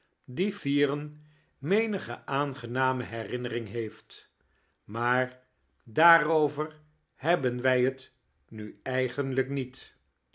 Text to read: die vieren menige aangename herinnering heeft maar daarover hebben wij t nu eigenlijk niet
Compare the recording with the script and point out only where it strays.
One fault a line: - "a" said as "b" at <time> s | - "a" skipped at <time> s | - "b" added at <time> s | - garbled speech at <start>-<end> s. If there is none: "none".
none